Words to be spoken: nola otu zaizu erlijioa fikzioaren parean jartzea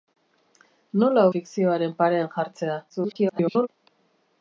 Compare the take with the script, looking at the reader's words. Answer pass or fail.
fail